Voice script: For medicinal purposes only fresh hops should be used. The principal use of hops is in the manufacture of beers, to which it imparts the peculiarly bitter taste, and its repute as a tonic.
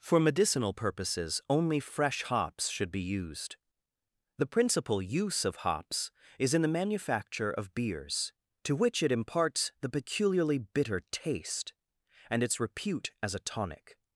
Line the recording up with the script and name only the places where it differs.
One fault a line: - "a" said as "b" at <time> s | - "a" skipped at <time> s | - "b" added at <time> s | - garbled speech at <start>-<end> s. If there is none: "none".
none